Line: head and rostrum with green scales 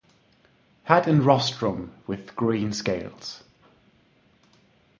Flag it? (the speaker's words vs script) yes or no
no